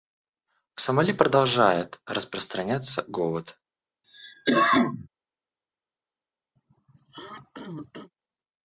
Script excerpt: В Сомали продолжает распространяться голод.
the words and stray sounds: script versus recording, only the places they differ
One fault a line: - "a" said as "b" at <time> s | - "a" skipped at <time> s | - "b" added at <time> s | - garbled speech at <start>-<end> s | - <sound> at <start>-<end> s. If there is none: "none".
- cough at 4.0-5.1 s
- throat clearing at 6.6-8.1 s